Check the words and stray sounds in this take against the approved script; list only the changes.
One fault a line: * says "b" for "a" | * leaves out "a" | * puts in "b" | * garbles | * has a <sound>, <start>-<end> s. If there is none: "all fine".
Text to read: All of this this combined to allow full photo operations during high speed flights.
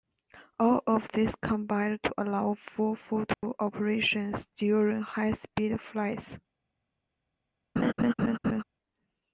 * leaves out "this"
* has a dropout, 3.3-3.4 s
* has a laugh, 7.8-8.6 s